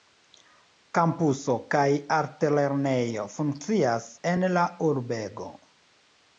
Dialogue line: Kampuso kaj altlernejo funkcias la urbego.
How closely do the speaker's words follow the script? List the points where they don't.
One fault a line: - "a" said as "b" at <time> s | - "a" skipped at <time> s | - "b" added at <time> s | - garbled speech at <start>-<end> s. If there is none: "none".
- "en" added at 4.3 s